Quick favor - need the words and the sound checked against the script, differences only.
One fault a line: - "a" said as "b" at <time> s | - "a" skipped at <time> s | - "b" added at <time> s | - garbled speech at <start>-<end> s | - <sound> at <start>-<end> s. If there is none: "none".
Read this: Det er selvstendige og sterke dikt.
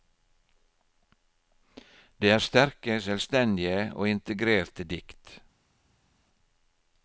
- "sterke" added at 2.4 s
- "sterke" said as "integrerte" at 4.1 s